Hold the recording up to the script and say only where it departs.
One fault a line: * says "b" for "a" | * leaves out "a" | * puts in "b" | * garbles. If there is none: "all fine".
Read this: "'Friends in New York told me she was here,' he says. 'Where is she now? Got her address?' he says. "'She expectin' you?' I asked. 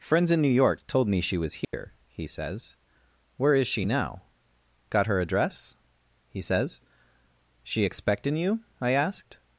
all fine